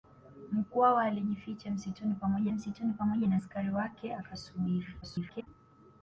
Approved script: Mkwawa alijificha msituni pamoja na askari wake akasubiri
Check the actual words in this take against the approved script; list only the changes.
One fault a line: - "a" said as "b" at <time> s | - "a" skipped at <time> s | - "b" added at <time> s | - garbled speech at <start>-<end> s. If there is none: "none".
- "msituni pamoja" added at 2.5 s
- garbled speech at 5.0-5.5 s